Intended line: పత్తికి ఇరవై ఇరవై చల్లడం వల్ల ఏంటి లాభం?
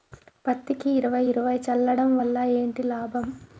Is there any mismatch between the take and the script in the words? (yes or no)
no